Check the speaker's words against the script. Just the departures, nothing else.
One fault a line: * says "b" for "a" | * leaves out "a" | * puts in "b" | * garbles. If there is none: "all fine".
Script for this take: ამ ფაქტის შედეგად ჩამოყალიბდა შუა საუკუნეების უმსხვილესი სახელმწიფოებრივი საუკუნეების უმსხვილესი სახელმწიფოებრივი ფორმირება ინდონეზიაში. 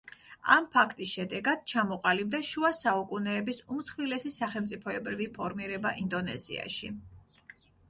* leaves out "საუკუნეების უმსხვილესი სახელმწიფოებრივი"